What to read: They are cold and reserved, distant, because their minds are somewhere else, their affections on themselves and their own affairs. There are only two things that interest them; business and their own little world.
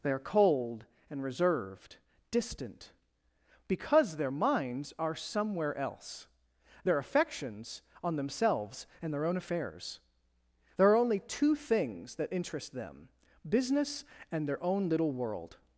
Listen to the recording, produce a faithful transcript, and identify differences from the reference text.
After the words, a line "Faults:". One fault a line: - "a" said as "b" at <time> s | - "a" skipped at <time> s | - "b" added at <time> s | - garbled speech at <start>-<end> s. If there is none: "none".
They are cold and reserved, distant, because their minds are somewhere else, their affections on themselves and their own affairs. There are only two things that interest them; business and their own little world.
Faults:
none